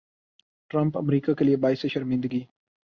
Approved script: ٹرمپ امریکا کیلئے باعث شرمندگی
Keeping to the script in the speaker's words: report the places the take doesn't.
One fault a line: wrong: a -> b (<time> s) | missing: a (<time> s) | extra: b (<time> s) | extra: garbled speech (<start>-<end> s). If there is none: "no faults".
no faults